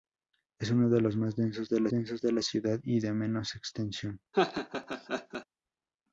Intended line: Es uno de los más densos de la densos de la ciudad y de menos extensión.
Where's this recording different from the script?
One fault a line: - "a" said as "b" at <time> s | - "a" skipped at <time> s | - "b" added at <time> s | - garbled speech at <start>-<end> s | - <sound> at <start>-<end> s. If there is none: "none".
- laugh at 4.3-5.5 s